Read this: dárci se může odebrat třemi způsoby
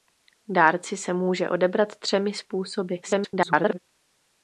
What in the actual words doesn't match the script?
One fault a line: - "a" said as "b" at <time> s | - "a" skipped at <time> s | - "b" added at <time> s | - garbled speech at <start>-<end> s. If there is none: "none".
- garbled speech at 3.0-3.8 s